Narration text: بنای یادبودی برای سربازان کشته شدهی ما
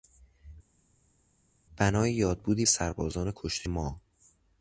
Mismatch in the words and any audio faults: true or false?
true